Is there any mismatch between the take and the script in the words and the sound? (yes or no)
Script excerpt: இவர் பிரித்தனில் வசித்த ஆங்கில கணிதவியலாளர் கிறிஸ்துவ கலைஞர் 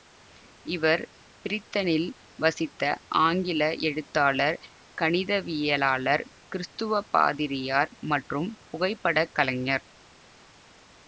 yes